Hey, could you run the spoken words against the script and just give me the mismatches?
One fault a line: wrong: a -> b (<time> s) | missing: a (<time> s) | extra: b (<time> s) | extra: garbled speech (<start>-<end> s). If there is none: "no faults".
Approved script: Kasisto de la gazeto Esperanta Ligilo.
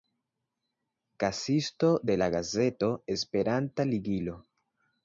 no faults